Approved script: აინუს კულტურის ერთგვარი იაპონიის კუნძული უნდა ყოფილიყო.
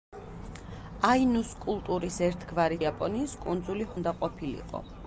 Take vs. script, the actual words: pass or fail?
pass